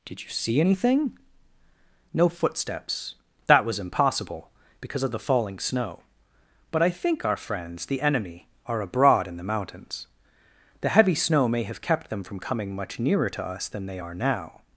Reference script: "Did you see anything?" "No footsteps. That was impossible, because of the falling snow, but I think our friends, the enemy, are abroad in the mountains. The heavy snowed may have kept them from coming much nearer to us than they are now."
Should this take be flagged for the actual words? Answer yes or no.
yes